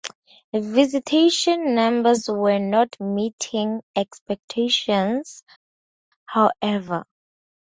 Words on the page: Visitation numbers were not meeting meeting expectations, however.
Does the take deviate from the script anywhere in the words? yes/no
yes